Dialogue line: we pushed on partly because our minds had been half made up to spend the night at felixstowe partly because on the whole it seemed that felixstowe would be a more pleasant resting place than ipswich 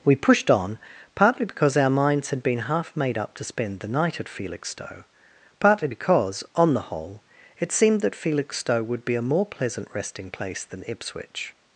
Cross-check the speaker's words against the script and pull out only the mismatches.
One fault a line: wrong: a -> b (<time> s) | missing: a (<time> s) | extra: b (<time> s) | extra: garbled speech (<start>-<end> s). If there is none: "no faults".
no faults